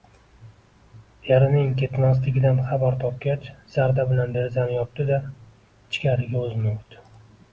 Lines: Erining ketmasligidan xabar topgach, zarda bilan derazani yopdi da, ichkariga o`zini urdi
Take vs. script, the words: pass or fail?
pass